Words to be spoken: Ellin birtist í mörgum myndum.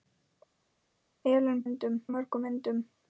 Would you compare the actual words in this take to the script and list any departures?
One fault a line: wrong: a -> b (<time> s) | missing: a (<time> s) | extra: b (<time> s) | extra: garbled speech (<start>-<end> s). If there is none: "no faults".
wrong: birtist -> myndum (1.7 s)